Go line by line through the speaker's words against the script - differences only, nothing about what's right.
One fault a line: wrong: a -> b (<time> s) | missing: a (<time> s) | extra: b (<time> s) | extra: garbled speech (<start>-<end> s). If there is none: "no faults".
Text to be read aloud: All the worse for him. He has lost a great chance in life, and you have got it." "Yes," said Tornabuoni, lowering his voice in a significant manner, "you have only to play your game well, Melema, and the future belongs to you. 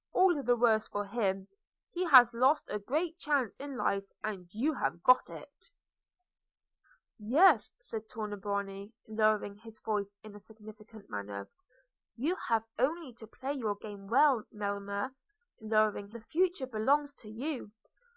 wrong: and -> lowering (15.6 s)